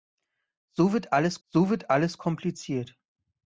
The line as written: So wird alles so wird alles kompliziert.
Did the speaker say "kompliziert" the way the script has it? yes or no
yes